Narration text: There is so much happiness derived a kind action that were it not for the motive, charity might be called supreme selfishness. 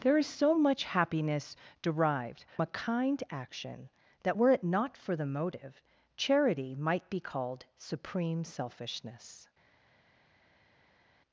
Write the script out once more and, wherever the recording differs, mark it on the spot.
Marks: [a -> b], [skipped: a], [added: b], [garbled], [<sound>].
There is so much happiness derived a kind action that were it not for the motive, charity might be called supreme selfishness.